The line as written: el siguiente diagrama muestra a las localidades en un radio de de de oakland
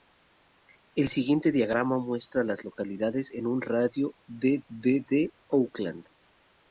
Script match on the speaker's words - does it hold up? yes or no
yes